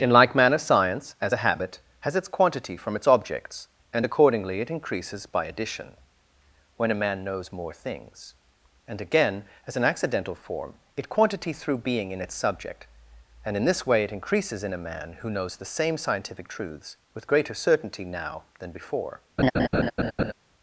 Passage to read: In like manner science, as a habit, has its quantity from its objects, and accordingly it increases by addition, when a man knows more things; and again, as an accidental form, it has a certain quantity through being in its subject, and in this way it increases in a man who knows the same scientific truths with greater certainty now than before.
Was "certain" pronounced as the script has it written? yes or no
no